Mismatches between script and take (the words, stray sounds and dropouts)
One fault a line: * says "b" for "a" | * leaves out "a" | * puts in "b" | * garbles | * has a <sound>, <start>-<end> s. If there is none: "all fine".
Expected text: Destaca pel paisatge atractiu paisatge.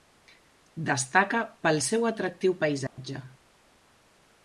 * says "seu" for "paisatge"
* has a dropout, 2.9-3.0 s